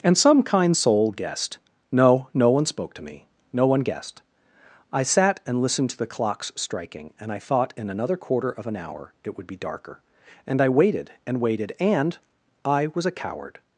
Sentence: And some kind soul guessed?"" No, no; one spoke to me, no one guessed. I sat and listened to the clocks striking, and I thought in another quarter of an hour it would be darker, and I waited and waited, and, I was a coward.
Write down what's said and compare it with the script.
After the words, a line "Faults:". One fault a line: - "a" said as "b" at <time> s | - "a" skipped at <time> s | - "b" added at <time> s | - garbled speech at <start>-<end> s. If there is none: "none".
And some kind soul guessed?"" No, no; one spoke to me, no one guessed. I sat and listened to the clocks striking, and I thought in another quarter of an hour it would be darker, and I waited and waited, and, I was a coward.
Faults:
none